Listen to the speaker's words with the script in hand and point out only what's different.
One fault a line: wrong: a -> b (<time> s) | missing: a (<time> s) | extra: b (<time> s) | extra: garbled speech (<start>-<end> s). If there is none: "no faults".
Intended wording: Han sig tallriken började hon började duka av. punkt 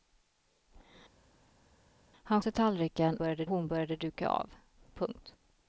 no faults